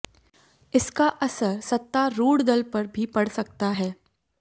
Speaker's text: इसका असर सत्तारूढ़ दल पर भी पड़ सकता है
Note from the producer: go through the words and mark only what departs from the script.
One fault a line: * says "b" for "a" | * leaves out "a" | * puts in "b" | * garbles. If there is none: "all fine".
all fine